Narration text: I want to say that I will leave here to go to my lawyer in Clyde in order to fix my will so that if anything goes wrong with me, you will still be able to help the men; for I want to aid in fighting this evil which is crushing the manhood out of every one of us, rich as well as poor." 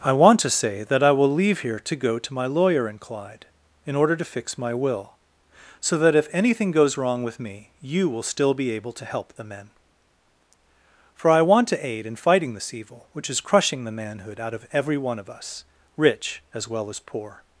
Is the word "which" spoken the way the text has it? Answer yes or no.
yes